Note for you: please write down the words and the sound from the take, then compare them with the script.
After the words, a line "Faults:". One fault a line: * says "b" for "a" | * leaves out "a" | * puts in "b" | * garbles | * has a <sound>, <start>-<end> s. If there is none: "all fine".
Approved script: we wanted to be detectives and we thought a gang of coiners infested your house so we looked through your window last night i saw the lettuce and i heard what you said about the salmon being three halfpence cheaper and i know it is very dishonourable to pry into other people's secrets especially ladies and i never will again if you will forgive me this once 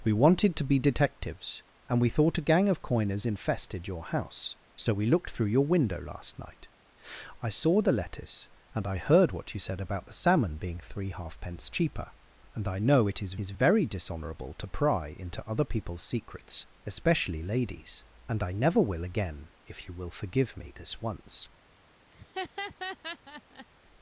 we wanted to be detectives and we thought a gang of coiners infested your house so we looked through your window last night i saw the lettuce and i heard what you said about the salmon being three halfpence cheaper and i know it is is very dishonourable to pry into other people's secrets especially ladies and i never will again if you will forgive me this once
Faults:
* puts in "is"
* has a laugh, 22.1-23.7 s